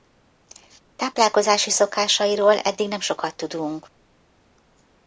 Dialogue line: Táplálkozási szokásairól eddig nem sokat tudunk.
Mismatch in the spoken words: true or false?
false